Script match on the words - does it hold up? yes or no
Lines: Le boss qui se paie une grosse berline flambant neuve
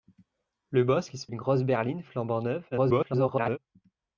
no